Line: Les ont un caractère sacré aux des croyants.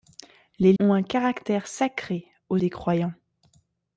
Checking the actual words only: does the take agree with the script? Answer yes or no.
yes